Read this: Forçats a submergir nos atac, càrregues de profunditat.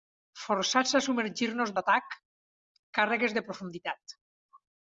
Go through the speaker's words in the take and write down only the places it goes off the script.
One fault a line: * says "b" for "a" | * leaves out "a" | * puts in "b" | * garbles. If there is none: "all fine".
all fine